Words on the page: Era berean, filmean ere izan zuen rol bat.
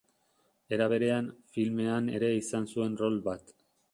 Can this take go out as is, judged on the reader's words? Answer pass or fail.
pass